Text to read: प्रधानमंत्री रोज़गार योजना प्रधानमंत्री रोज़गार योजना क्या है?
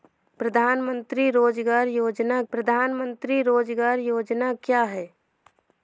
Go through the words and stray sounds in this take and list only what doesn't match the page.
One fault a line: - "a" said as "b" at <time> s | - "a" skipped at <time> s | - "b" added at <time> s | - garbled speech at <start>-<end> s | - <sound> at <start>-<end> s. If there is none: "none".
none